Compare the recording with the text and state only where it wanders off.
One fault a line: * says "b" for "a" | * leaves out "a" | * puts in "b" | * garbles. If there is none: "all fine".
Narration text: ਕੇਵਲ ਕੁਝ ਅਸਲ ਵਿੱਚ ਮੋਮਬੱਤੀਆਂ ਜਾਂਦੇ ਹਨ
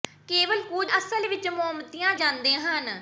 all fine